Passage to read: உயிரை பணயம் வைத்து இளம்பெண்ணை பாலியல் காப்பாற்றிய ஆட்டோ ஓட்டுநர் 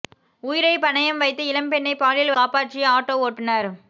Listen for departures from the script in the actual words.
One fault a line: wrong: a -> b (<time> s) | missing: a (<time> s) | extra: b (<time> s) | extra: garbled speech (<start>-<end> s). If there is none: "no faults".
no faults